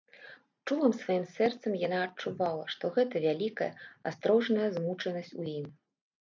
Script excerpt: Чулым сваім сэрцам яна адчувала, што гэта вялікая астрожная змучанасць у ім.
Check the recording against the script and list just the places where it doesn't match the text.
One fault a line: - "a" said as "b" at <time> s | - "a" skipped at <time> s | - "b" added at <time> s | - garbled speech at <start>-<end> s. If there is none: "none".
none